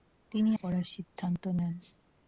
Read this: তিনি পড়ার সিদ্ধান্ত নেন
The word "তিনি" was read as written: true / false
true